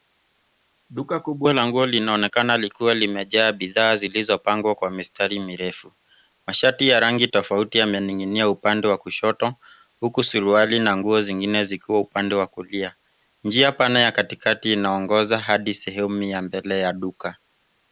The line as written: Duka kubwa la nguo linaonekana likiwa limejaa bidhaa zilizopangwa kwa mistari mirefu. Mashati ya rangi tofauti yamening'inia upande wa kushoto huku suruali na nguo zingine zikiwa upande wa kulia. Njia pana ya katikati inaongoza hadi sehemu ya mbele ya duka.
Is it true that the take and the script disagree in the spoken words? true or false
false